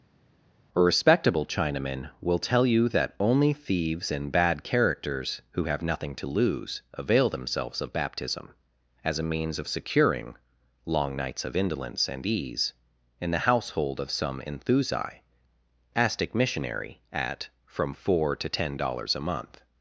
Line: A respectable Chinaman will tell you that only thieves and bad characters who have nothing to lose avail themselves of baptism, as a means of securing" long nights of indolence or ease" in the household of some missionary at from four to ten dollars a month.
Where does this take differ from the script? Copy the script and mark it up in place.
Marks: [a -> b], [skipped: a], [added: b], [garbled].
A respectable Chinaman will tell you that only thieves and bad characters who have nothing to lose avail themselves of baptism, as a means of securing" long nights of indolence [or -> and] ease" in the household of some [added: enthusi astic] missionary at from four to ten dollars a month.